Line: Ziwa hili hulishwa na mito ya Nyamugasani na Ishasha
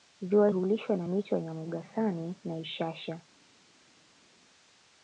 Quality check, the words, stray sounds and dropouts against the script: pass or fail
fail